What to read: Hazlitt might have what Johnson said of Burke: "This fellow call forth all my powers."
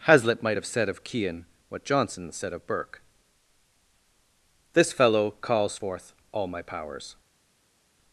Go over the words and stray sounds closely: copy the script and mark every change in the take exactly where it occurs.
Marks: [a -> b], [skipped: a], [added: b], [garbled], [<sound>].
Hazlitt might have [added: said of Kean] what Johnson said of Burke: "This fellow [call -> calls] forth all my powers."